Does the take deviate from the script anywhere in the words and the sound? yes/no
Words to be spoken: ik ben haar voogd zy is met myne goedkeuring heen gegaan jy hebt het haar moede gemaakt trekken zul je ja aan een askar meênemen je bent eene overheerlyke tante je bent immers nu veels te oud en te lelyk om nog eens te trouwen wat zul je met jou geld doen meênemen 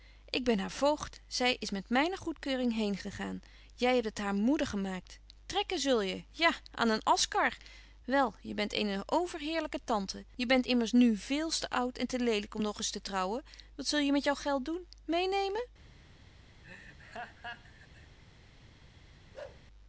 yes